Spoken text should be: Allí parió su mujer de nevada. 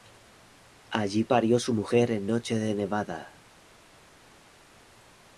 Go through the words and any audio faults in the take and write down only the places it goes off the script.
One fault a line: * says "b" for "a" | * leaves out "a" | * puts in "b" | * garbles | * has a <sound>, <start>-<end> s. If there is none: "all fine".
* puts in "en noche"